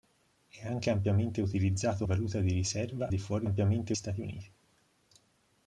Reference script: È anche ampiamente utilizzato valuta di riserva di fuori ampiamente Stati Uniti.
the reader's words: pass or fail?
pass